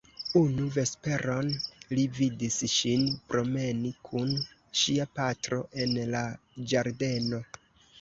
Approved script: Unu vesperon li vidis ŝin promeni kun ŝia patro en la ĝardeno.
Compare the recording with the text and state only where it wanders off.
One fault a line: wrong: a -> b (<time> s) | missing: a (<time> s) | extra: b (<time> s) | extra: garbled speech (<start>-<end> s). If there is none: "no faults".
no faults